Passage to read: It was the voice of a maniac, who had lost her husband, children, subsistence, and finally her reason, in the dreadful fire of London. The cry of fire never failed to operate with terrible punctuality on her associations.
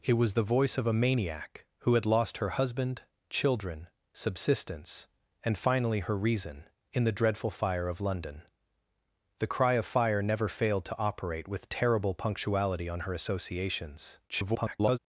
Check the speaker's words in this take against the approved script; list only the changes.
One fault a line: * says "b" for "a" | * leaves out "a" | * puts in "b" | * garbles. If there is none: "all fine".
* garbles